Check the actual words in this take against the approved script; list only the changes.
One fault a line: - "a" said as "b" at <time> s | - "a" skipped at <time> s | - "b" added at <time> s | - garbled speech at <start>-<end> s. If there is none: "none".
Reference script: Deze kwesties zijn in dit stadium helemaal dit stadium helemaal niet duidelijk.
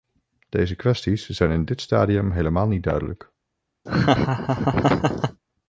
- "dit stadium helemaal" skipped at 2.7 s